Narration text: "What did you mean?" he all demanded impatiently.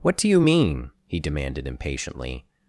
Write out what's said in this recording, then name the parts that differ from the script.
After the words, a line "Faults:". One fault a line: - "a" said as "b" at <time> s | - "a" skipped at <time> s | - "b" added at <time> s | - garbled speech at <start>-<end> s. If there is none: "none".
"What do you mean?" he demanded impatiently.
Faults:
- "did" said as "do" at 0.2 s
- "all" skipped at 1.2 s